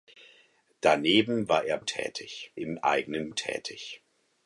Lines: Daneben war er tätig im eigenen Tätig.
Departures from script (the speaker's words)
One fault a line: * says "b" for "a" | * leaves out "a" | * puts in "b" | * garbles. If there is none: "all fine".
all fine